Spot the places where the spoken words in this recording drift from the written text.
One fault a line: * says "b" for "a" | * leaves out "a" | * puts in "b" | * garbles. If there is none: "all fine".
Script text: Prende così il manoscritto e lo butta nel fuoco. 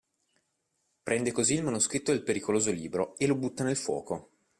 * puts in "del pericoloso libro"